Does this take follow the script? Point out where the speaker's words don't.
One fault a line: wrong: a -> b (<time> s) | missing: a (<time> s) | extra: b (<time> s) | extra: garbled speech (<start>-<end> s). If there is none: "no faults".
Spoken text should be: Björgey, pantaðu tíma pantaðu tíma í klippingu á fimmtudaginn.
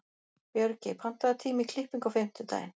missing: pantaðu tíma (1.7 s)